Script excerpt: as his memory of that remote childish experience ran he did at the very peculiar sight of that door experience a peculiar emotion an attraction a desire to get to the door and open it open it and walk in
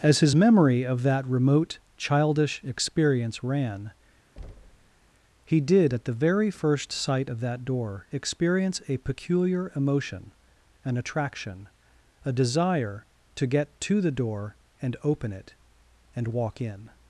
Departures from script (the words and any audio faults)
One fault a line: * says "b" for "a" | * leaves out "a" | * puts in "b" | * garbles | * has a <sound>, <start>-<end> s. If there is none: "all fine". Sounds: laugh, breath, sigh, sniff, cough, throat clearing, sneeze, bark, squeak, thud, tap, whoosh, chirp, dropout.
* has a thud, 4.4-5.1 s
* says "first" for "peculiar"
* leaves out "open it"